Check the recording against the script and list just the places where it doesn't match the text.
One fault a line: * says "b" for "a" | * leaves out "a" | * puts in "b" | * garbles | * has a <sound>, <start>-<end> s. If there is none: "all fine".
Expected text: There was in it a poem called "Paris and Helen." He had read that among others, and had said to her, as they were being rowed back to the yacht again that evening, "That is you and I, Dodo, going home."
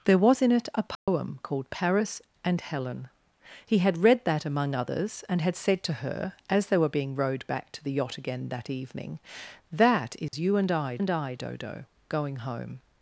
* has a dropout, 0.9-1.1 s
* has a dropout, 10.3-10.3 s
* puts in "and I"